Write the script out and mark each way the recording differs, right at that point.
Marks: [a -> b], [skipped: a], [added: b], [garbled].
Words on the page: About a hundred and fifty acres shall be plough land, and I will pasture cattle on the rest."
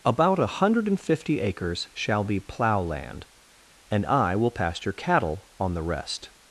About a hundred and fifty acres shall be plough land, and I will pasture cattle on the rest."